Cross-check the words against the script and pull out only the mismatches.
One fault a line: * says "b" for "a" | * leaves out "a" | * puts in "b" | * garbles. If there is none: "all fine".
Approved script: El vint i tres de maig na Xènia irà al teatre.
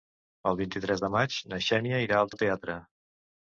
* puts in "al"